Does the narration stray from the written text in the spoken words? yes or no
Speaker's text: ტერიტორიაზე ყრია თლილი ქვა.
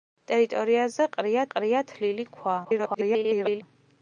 yes